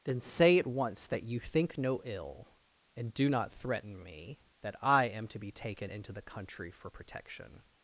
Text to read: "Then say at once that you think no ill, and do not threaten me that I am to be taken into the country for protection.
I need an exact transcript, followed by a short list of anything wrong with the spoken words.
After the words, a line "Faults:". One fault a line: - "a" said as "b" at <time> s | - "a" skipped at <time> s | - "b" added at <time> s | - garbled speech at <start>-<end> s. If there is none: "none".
"Then say at once that you think no ill, and do not threaten me that I am to be taken into the country for protection.
Faults:
none